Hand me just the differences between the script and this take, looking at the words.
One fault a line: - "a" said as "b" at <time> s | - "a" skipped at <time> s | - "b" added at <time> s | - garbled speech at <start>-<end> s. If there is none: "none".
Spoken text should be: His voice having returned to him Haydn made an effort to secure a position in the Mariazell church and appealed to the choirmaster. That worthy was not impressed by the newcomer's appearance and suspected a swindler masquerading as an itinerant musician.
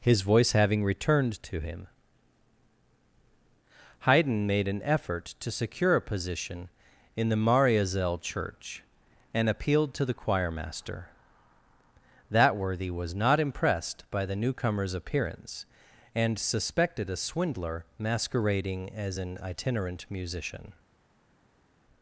none